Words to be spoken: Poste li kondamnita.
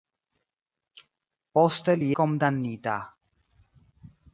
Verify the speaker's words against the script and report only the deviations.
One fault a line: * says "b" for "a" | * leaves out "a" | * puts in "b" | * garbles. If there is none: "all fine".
all fine